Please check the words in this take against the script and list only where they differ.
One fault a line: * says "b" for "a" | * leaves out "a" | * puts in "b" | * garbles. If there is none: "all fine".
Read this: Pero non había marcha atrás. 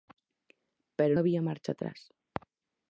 * leaves out "non"